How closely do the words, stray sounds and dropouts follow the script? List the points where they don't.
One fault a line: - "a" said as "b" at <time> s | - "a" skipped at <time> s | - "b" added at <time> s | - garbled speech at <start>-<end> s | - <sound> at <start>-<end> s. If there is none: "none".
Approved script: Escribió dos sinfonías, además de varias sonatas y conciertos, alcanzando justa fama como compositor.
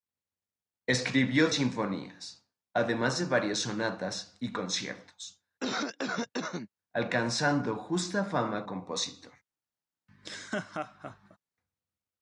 - "dos" skipped at 1.5 s
- cough at 5.6-6.7 s
- "como" skipped at 8.7 s
- laugh at 10.1-11.4 s